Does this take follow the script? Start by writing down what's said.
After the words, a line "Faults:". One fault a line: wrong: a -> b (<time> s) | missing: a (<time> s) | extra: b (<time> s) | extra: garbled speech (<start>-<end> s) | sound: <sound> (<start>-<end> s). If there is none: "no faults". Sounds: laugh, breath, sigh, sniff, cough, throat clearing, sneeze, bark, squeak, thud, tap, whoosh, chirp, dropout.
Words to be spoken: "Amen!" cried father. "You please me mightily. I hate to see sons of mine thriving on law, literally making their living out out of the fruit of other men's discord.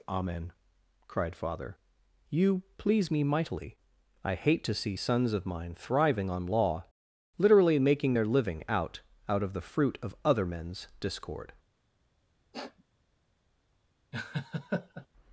"Amen!" cried father. "You please me mightily. I hate to see sons of mine thriving on law, literally making their living out out of the fruit of other men's discord.
Faults:
sound: sniff (12.5-12.8 s)
sound: laugh (14.1-15.1 s)